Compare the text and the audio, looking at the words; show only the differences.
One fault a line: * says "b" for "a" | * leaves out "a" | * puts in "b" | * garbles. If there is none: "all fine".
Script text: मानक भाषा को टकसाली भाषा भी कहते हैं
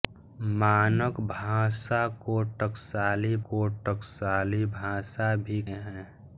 * puts in "को टकसाली"
* leaves out "कहते"